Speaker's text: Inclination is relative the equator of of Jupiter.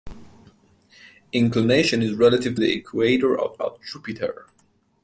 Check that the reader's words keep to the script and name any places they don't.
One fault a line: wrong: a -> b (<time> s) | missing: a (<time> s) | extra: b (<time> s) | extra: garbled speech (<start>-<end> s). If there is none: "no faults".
no faults